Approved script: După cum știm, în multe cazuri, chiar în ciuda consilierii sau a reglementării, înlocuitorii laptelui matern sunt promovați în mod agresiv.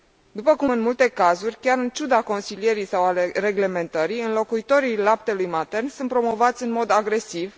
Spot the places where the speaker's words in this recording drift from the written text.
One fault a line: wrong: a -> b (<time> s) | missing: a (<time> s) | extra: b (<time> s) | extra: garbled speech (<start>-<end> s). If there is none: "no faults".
missing: știm (0.7 s)